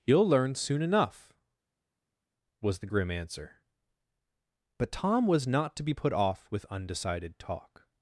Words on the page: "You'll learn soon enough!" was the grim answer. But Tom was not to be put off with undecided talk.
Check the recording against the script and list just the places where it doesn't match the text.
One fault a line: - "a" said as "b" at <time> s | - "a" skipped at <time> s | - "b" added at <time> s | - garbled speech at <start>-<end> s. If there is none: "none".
none